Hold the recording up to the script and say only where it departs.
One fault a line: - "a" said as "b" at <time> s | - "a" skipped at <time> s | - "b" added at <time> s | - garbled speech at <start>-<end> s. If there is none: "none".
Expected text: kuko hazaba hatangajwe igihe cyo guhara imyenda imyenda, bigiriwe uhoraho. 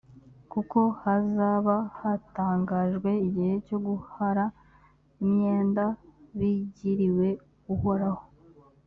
- "imyenda" skipped at 5.8 s